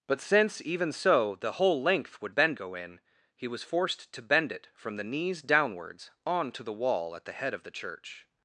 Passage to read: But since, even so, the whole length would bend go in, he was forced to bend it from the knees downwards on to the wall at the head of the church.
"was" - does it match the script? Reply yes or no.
yes